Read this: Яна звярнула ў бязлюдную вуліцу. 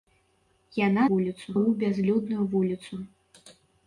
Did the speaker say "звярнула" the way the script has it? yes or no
no